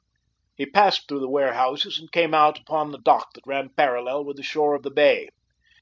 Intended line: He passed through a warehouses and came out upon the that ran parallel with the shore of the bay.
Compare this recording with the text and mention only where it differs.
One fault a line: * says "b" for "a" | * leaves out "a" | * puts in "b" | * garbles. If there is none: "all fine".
* says "the" for "a"
* puts in "dock"